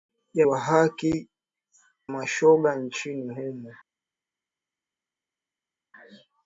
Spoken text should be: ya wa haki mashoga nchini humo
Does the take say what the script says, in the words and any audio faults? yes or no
yes